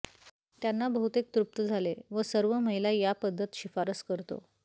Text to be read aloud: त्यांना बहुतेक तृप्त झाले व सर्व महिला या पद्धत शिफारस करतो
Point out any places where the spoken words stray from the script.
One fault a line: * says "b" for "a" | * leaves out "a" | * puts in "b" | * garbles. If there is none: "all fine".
all fine